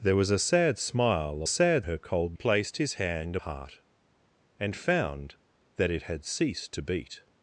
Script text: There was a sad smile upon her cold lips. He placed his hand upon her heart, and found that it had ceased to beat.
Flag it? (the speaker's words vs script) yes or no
yes